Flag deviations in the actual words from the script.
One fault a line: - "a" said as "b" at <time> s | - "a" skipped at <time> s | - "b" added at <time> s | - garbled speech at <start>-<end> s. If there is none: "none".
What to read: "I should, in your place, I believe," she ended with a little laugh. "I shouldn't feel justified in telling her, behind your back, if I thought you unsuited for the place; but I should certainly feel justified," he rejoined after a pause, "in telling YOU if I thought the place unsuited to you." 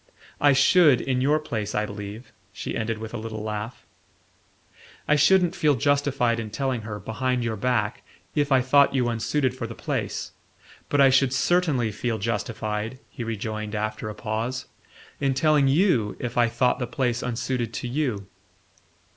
none